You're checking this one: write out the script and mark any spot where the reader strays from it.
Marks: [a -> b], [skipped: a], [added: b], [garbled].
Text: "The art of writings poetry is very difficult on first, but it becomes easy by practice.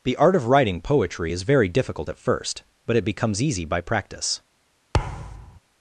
"The art of [writings -> writing] poetry is very difficult [on -> at] first, but it becomes easy by practice.